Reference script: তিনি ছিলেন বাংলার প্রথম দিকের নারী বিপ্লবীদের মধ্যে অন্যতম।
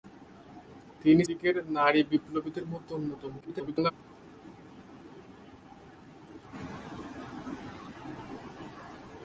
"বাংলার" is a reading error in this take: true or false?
true